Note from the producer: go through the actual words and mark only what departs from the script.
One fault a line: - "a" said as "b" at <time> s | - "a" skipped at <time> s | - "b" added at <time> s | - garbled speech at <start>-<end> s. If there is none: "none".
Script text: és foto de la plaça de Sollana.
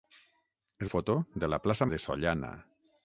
none